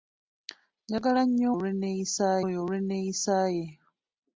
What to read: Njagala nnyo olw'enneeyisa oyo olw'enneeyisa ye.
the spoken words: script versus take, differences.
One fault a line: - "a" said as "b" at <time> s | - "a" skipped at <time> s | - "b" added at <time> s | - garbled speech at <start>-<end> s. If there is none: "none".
none